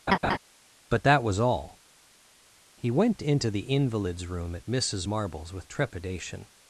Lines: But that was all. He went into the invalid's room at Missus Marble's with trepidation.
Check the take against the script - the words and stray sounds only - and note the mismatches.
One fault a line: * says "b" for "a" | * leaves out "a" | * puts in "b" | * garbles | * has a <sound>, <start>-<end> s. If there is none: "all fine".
* has a laugh, 0.1-0.4 s